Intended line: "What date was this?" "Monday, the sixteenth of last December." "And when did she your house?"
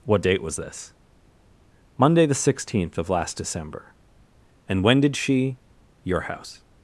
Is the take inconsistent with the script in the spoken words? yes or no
no